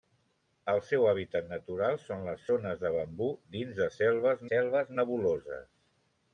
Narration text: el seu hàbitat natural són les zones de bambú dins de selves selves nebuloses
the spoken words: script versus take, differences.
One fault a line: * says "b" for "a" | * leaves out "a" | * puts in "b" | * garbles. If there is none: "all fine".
all fine